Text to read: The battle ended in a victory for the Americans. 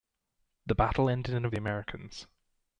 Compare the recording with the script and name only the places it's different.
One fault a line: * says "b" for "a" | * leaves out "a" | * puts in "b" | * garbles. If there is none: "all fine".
* leaves out "victory for"